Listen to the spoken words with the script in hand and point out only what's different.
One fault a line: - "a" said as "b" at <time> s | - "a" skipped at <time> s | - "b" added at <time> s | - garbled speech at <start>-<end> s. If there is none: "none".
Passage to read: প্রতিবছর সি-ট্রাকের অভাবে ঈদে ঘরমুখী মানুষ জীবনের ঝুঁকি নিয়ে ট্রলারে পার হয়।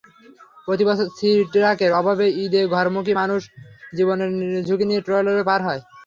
none